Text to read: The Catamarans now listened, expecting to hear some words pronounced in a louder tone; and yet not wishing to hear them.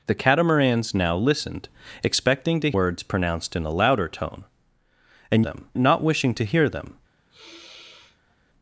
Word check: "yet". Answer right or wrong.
wrong